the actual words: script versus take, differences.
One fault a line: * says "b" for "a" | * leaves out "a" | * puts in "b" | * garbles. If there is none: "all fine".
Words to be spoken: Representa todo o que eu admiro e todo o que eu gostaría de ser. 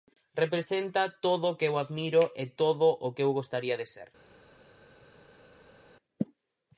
all fine